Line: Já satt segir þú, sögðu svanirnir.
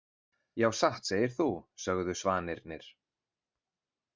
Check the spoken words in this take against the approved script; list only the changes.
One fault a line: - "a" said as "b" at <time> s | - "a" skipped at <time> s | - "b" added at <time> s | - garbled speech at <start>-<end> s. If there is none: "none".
none